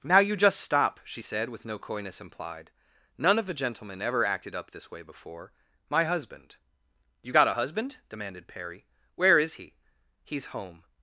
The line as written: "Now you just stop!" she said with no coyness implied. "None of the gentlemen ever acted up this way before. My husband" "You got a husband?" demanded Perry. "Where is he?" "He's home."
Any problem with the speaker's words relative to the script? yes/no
no